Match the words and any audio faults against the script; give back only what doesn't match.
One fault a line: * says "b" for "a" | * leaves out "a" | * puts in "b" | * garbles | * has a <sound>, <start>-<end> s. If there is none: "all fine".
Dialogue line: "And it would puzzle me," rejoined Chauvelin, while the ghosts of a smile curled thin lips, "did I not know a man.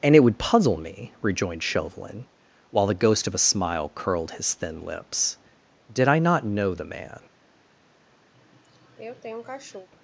* says "ghost" for "ghosts"
* puts in "his"
* says "the" for "a"
* has a sneeze, 8.3-9.9 s